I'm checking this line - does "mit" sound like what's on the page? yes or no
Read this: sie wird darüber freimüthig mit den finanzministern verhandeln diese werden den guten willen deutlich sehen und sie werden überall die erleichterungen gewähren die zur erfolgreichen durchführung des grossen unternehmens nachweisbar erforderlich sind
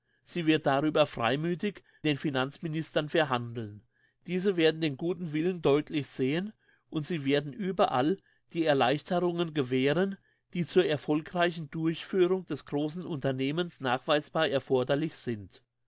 no